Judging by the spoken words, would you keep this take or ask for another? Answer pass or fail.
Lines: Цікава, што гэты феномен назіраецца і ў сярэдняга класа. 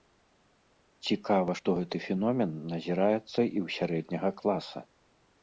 pass